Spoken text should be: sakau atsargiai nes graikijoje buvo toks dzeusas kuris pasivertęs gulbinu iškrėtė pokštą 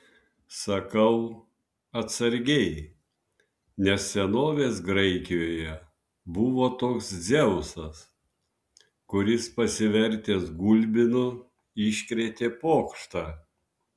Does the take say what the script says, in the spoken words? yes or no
no